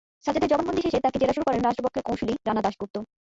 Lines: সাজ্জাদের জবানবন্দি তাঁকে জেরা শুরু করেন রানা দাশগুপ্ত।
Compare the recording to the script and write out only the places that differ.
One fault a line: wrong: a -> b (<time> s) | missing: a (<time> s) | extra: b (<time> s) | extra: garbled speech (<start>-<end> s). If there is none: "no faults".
extra: শেষে (0.8 s)
extra: রাষ্ট্রপক্ষের কৌঁসুলি (1.6 s)